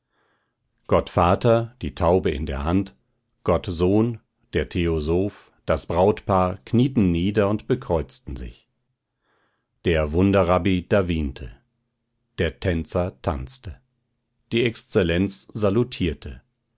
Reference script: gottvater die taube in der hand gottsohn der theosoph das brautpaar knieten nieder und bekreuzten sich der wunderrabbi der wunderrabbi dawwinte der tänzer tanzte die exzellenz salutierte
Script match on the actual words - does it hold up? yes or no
no